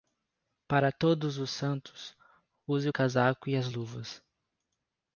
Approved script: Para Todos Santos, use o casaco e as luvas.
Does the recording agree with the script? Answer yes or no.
no